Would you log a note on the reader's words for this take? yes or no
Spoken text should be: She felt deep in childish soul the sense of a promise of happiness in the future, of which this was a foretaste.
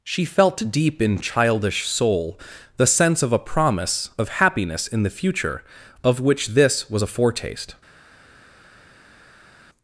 no